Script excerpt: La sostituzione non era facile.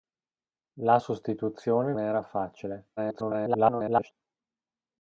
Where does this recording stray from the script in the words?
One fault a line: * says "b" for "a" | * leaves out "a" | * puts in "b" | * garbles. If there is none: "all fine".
* leaves out "non"
* garbles